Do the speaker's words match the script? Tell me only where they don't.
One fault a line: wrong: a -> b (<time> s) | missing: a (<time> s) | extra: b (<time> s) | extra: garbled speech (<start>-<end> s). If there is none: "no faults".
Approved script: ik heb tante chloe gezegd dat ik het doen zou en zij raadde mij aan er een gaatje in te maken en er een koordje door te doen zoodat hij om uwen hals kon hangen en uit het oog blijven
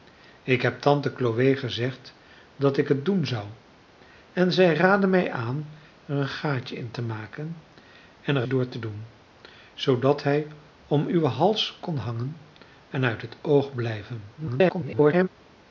missing: een koordje (8.4 s)
extra: garbled speech (14.4-15.3 s)